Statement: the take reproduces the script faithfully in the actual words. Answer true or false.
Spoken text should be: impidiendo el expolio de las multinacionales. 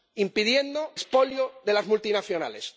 false